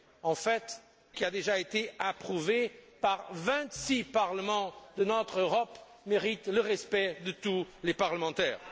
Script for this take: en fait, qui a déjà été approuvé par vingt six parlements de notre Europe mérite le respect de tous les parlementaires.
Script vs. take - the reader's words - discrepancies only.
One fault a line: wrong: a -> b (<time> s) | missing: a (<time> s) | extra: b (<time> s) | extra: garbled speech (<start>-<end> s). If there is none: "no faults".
no faults